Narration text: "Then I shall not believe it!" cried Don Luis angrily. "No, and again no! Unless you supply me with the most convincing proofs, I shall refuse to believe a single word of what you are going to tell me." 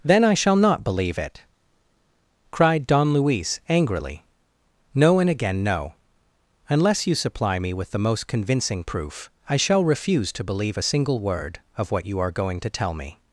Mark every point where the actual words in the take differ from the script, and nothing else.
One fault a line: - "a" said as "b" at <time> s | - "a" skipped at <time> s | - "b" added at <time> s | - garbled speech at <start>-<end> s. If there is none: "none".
- "proofs" said as "proof" at 8.8 s